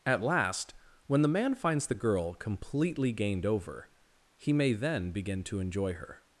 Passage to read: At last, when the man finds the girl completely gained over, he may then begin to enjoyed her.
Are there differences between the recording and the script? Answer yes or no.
yes